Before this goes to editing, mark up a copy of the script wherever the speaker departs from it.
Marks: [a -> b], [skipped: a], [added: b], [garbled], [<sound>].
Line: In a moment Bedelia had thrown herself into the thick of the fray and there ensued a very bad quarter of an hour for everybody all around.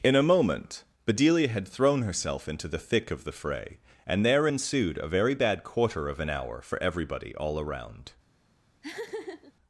In a moment Bedelia had thrown herself into the thick of the fray and there ensued a very bad quarter of an hour for everybody all around. [laugh]